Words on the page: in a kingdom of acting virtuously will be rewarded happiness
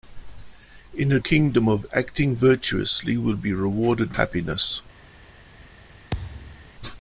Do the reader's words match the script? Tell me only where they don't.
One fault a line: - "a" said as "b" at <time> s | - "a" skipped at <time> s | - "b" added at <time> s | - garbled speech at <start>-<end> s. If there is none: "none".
none